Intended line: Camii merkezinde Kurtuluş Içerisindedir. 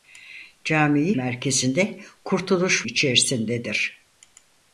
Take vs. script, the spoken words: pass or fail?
pass